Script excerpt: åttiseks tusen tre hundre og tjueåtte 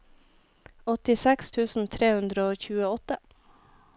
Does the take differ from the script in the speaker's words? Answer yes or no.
no